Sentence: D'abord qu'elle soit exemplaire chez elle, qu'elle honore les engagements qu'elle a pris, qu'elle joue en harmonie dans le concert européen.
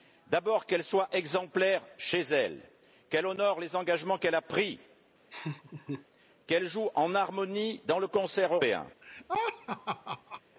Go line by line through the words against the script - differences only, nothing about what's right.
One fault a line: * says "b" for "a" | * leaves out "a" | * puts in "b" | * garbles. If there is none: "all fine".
all fine